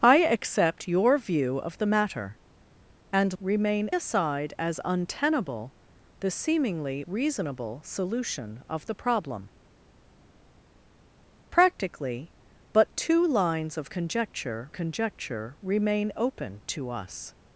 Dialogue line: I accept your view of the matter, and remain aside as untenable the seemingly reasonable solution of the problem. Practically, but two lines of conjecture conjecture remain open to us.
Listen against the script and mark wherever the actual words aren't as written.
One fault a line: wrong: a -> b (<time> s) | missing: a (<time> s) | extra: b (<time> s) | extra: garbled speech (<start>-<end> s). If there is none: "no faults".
no faults